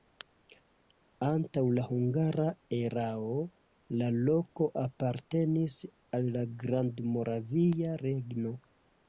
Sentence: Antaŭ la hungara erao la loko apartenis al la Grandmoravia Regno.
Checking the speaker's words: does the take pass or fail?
pass